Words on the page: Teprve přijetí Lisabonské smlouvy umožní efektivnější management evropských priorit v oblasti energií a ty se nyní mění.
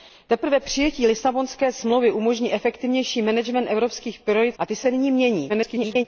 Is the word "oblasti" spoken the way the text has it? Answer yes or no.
no